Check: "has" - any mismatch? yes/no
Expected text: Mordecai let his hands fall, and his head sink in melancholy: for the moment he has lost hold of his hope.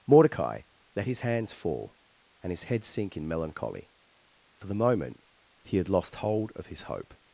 yes